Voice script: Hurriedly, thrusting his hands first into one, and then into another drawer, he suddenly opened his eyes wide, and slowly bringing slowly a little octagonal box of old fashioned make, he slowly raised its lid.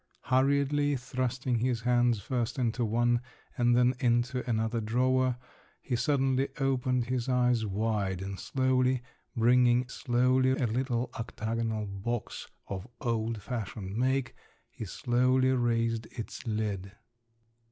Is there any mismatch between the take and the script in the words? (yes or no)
no